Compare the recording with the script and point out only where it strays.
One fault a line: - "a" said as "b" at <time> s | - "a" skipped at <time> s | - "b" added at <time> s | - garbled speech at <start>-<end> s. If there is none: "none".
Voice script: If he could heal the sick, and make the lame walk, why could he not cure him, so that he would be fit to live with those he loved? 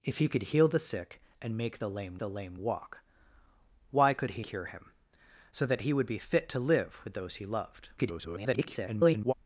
- "the lame" added at 2.2 s
- "not" skipped at 4.4 s
- garbled speech at 8.0-9.3 s